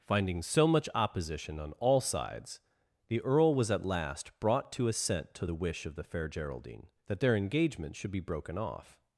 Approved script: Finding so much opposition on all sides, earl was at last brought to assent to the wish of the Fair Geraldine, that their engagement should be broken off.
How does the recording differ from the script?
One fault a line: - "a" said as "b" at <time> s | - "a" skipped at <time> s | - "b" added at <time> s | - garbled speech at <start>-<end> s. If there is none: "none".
- "the" added at 3.1 s